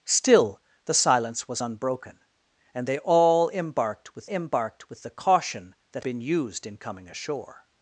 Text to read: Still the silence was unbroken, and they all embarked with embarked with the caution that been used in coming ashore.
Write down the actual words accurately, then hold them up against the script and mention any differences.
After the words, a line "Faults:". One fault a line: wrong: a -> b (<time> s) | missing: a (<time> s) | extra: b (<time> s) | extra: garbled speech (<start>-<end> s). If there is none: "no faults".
Still the silence was unbroken, and they all embarked with embarked with the caution that been used in coming ashore.
Faults:
no faults